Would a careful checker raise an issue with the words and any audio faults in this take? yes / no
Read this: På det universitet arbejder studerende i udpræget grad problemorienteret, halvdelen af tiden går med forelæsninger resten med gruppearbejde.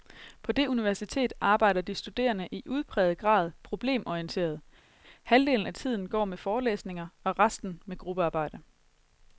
yes